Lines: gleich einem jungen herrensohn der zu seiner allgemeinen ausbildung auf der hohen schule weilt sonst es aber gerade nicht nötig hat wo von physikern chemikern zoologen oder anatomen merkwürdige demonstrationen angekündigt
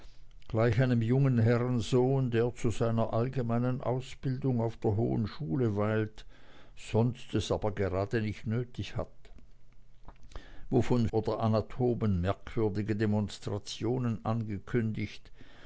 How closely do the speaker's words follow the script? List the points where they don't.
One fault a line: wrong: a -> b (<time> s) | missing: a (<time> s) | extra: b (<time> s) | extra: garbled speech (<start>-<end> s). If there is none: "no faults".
missing: physikern chemikern zoologen (11.1 s)